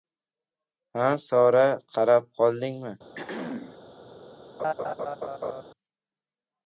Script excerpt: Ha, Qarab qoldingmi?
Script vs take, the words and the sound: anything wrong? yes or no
yes